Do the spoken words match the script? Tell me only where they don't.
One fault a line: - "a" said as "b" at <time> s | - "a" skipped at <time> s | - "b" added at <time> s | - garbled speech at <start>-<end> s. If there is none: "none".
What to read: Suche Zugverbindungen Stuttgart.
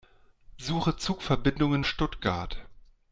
none